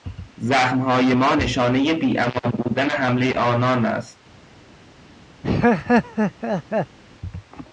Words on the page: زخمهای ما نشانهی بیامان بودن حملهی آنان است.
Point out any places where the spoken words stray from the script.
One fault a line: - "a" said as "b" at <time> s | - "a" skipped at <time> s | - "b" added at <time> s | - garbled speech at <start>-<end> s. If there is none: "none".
none